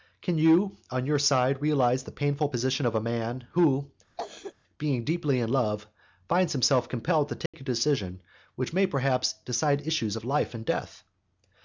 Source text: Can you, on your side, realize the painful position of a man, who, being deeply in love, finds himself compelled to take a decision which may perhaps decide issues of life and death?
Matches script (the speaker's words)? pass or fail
pass